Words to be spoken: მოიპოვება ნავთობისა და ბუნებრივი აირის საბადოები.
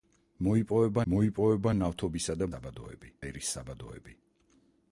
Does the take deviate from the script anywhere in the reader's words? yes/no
yes